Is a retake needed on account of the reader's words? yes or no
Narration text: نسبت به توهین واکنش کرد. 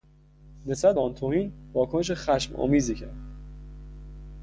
yes